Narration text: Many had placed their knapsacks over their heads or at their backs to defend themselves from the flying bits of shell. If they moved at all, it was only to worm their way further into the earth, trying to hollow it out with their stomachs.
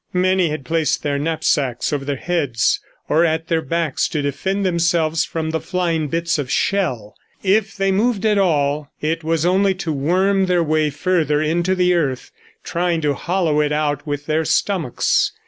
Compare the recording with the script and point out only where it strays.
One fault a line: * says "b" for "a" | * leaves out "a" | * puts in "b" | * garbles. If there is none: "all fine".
all fine